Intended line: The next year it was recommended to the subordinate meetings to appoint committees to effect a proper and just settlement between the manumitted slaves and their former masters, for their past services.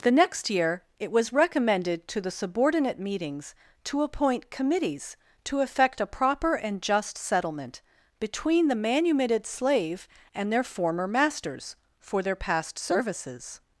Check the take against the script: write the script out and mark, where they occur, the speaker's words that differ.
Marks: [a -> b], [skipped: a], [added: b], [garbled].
The next year it was recommended to the subordinate meetings to appoint committees to effect a proper and just settlement between the manumitted [slaves -> slave] and their former masters, for their past services.